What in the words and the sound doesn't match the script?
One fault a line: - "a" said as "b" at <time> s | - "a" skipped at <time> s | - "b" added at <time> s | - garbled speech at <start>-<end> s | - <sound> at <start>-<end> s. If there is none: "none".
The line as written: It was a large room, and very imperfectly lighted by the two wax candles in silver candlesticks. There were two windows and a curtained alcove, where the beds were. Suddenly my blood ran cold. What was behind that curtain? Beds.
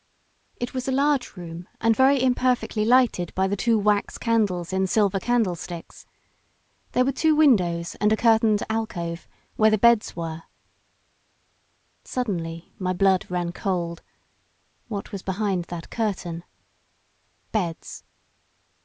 none